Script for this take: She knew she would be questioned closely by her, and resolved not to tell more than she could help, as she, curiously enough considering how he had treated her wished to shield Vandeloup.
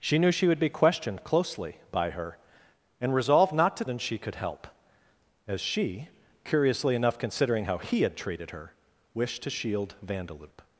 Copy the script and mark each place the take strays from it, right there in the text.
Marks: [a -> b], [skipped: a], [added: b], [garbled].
She knew she would be questioned closely by her, and resolved not to [skipped: tell more] than she could help, as she, curiously enough considering how he had treated her wished to shield Vandeloup.